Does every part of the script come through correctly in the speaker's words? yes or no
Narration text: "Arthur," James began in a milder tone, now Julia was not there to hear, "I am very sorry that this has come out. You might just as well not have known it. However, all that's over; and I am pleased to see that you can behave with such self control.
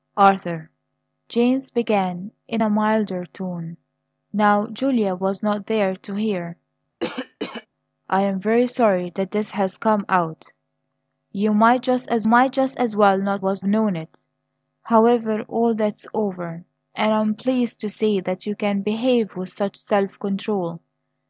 no